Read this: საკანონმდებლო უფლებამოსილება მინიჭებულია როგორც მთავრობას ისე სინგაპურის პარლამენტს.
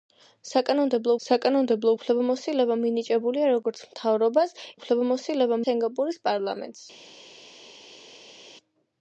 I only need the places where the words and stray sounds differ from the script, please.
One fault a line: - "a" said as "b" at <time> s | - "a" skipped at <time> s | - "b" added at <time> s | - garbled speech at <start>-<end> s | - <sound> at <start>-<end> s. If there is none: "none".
- "საკანონმდებლო" added at 1.3 s
- "ისე" said as "უფლებამოსილება" at 4.8 s